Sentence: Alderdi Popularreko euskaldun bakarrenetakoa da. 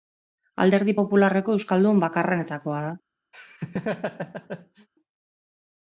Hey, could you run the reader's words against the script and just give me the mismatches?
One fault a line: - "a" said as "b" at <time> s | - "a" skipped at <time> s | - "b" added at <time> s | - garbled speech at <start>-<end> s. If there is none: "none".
none